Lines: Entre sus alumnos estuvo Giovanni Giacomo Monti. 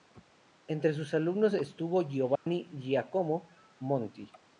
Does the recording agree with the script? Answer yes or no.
yes